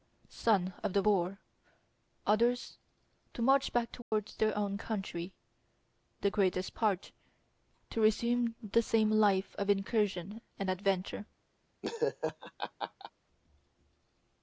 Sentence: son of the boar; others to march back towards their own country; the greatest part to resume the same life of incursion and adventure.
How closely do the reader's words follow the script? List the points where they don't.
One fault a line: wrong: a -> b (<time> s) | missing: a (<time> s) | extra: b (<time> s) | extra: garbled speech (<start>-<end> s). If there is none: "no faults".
no faults